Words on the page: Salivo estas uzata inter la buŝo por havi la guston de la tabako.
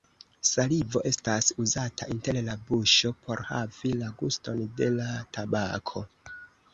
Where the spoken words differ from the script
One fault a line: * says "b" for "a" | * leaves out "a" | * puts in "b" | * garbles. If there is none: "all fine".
all fine